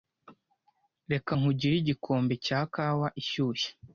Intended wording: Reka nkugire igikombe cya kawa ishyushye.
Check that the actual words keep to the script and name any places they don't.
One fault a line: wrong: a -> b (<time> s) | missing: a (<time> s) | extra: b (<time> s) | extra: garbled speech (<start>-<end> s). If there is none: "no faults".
no faults